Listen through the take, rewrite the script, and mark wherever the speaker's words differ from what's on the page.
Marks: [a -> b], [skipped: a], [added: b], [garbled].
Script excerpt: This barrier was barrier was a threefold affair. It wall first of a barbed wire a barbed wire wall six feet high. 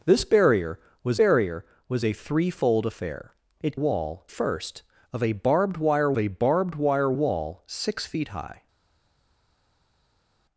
This barrier was barrier was a threefold affair. It wall first of a barbed wire a barbed wire wall six feet high.